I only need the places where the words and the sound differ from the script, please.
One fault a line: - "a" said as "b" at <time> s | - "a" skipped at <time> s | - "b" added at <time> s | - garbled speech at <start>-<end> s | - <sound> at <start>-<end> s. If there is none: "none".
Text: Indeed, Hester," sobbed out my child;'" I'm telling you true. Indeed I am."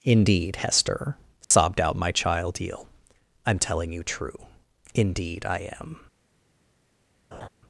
- dropout at 1.4-1.5 s
- "eel" added at 2.6 s
- laugh at 7.3-7.5 s